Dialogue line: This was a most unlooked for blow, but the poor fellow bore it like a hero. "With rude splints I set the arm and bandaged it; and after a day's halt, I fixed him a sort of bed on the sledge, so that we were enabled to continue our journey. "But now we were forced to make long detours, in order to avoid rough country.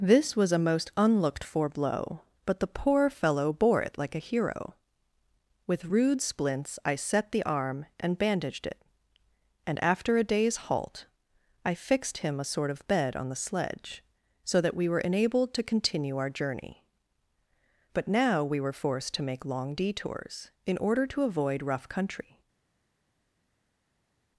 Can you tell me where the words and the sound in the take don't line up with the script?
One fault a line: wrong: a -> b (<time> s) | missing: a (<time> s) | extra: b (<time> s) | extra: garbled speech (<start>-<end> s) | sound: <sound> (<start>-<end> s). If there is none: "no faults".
no faults